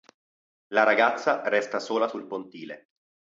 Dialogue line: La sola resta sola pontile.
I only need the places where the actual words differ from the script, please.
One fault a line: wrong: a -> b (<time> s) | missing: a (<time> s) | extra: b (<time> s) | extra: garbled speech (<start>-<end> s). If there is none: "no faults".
wrong: sola -> ragazza (0.8 s)
extra: sul (2.0 s)